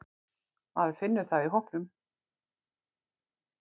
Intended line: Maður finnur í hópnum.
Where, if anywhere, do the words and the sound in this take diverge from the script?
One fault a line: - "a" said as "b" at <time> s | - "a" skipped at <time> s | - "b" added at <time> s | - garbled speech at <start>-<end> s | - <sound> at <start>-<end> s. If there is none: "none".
- "það" added at 1.3 s